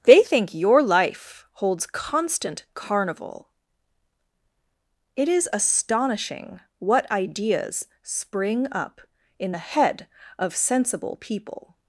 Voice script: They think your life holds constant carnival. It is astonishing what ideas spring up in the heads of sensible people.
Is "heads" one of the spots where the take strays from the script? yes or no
yes